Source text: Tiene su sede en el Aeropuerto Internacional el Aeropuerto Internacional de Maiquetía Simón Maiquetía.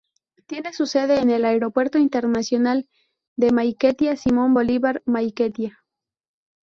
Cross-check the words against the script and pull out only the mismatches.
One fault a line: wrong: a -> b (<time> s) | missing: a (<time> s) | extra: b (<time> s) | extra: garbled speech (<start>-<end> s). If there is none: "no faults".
missing: el Aeropuerto Internacional (2.9 s)
extra: Bolívar (4.5 s)